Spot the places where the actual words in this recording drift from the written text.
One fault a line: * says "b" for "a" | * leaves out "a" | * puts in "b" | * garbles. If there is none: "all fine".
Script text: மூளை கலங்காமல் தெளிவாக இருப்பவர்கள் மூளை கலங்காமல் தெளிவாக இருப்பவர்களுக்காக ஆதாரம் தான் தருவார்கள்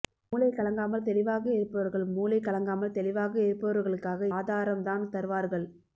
all fine